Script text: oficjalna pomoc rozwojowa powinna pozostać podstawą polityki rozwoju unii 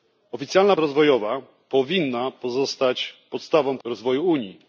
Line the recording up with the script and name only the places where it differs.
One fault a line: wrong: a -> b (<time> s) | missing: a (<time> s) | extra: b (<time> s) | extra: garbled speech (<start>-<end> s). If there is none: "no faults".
missing: pomoc (0.8 s)
missing: polityki (3.8 s)